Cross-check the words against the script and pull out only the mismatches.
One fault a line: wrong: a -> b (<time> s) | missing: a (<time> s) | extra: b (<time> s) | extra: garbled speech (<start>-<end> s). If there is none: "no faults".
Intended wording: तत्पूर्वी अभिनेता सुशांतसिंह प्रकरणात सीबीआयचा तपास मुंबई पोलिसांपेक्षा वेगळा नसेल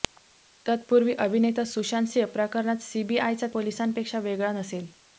missing: तपास मुंबई (3.5 s)